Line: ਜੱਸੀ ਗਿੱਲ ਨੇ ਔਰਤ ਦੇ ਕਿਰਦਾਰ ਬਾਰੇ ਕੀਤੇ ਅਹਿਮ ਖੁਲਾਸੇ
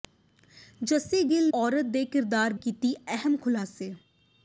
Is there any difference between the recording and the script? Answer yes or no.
yes